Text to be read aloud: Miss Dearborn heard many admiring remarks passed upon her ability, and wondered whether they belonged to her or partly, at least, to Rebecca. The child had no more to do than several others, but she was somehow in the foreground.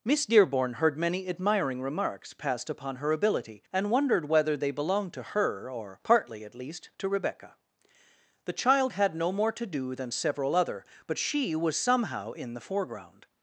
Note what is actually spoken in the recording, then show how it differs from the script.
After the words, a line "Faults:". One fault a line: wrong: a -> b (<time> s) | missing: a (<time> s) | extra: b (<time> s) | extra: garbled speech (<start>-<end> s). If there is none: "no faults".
Miss Dearborn heard many admiring remarks passed upon her ability, and wondered whether they belonged to her or partly, at least, to Rebecca. The child had no more to do than several other, but she was somehow in the foreground.
Faults:
wrong: others -> other (10.5 s)